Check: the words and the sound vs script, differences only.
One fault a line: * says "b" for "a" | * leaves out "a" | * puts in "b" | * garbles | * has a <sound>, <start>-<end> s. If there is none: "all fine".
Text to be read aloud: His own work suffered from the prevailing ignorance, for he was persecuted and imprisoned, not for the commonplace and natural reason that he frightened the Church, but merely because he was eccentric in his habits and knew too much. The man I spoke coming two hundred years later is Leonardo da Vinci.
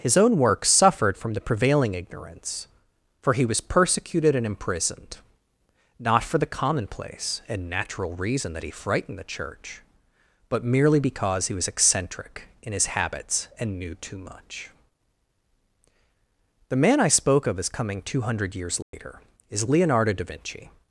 * puts in "of as"
* has a dropout, 18.8-18.9 s